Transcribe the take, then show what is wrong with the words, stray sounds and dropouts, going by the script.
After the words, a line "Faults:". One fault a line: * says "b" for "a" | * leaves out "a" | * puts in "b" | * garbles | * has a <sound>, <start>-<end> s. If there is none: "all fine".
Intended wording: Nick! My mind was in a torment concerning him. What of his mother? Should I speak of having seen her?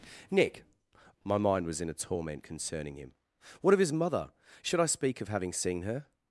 Nick! My mind was in a torment concerning him. What of his mother? Should I speak of having seen her?
Faults:
all fine